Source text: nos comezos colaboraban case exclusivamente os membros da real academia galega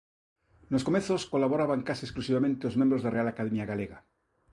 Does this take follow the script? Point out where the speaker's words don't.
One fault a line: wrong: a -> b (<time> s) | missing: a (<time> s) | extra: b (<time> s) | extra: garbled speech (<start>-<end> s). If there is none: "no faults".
no faults